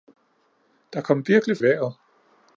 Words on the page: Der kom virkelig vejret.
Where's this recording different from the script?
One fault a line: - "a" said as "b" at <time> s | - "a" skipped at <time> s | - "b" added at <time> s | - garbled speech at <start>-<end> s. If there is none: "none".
none